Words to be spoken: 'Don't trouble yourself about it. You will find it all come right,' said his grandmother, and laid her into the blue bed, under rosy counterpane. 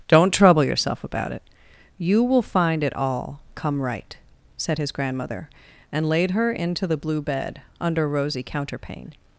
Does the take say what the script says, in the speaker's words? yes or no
yes